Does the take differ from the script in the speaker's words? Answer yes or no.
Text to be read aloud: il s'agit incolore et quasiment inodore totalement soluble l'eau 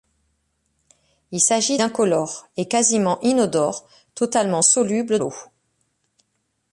no